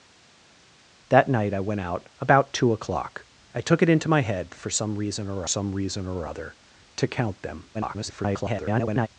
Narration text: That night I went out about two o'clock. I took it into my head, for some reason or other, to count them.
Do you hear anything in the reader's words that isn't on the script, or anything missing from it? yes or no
yes